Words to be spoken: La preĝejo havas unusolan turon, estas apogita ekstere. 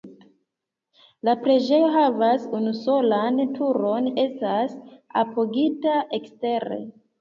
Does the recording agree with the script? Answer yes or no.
yes